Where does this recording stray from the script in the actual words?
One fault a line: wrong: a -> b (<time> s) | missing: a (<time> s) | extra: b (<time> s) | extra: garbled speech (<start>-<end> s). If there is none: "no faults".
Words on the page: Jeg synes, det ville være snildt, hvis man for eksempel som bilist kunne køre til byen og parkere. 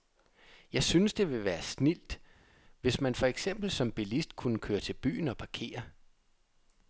no faults